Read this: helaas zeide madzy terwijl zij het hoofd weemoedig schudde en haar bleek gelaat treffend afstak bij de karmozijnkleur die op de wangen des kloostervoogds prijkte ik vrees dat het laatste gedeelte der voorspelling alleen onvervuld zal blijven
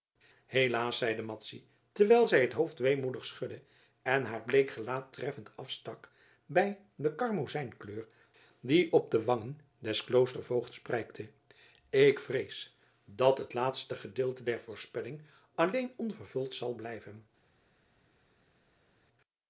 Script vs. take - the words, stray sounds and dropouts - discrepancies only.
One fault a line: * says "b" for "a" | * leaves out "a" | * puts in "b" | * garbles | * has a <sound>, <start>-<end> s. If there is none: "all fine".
all fine